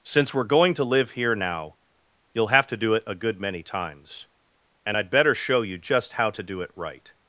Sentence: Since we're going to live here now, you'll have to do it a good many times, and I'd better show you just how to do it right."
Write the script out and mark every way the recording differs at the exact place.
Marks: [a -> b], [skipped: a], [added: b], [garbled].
Since we're going to live here now, you'll have to do it a good many times, and I'd better show you just how to do it right."